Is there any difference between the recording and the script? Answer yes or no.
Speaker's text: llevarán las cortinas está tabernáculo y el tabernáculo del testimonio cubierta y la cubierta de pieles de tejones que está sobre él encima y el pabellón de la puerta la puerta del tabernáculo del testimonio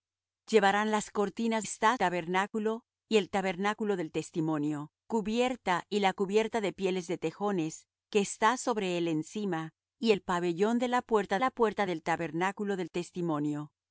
no